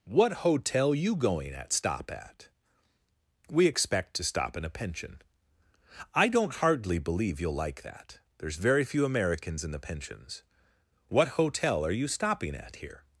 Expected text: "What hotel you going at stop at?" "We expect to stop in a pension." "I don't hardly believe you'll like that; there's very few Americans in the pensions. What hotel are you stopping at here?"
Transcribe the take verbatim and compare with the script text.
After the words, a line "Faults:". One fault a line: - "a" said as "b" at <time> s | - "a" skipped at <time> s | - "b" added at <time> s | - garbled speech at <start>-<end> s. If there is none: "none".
"What hotel you going at stop at?" "We expect to stop in a pension." "I don't hardly believe you'll like that; there's very few Americans in the pensions. What hotel are you stopping at here?"
Faults:
none